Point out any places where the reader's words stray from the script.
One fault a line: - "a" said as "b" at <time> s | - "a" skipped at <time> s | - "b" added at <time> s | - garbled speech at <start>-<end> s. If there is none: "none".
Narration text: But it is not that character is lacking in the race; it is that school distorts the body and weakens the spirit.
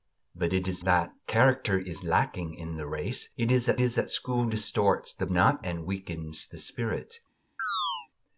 - "not" skipped at 0.8 s
- "is that" added at 3.8 s
- "body" said as "not" at 5.3 s